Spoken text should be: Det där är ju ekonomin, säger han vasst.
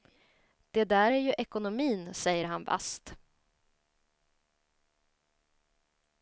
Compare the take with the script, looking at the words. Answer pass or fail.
pass